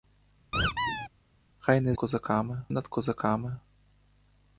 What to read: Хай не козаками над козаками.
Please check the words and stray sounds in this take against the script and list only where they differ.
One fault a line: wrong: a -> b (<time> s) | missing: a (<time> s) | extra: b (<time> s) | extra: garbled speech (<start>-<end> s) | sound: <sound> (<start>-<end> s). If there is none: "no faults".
sound: squeak (0.5-1.1 s)